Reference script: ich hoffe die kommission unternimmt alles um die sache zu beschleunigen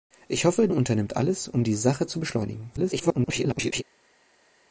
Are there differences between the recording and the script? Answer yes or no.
yes